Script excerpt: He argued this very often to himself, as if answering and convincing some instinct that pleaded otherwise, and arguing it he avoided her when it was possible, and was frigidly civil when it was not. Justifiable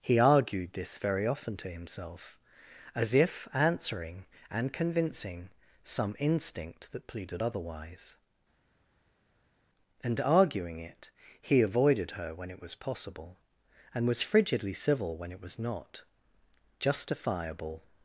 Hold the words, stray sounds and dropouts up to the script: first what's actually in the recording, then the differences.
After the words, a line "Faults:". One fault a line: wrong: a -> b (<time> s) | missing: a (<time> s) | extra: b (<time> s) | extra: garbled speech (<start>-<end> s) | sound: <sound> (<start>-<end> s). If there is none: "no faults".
He argued this very often to himself, as if answering and convincing some instinct that pleaded otherwise, and arguing it he avoided her when it was possible, and was frigidly civil when it was not. Justifiable
Faults:
no faults